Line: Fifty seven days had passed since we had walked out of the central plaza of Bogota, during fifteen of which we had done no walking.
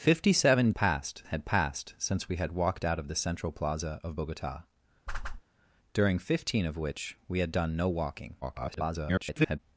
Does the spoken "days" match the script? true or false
false